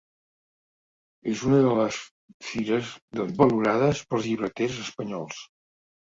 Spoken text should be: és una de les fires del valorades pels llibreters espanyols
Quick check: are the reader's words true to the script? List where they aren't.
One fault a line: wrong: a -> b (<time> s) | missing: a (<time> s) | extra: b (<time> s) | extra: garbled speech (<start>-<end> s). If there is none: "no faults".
no faults